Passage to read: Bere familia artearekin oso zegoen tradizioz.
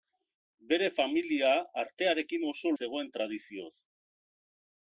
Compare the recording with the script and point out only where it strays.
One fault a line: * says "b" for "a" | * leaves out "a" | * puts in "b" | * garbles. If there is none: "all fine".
all fine